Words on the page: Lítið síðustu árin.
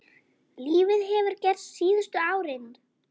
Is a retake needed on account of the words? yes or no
yes